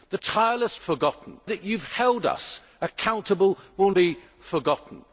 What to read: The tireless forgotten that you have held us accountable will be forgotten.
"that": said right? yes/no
yes